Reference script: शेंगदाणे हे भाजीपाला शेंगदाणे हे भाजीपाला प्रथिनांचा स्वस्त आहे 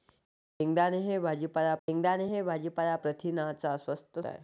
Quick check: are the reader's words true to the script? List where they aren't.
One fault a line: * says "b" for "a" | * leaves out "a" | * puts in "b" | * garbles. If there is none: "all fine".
all fine